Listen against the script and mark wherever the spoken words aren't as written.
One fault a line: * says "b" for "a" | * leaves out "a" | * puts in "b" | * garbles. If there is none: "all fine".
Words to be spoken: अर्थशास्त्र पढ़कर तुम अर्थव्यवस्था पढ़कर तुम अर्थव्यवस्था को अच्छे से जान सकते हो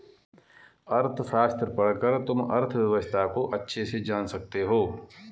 * leaves out "पढ़कर तुम अर्थव्यवस्था"